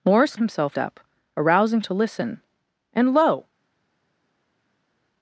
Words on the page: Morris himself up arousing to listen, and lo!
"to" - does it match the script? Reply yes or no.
yes